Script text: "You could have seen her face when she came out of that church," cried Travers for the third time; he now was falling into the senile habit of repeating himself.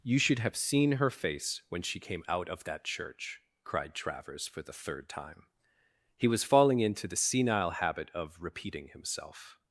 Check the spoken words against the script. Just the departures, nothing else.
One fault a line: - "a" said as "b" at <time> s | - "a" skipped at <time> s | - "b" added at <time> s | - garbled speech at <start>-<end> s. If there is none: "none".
- "could" said as "should" at 0.2 s
- "now" skipped at 6.3 s